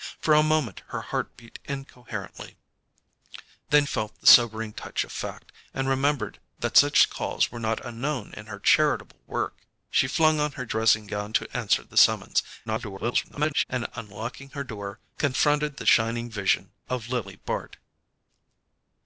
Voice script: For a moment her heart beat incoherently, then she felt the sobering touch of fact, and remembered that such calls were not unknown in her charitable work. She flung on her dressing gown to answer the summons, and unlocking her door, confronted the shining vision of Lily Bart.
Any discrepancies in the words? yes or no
yes